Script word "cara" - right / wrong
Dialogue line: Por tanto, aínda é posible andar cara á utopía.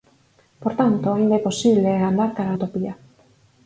right